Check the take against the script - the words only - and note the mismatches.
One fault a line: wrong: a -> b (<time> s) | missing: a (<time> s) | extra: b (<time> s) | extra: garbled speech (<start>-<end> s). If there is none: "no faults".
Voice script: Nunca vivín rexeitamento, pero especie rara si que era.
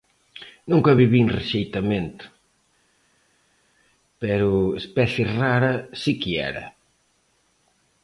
no faults